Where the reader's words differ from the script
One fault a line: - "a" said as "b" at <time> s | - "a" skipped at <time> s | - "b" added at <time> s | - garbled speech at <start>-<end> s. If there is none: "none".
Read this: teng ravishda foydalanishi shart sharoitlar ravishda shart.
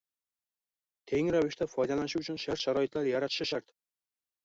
- "uchun" added at 2.2 s
- "ravishda" said as "yaratishi" at 3.1 s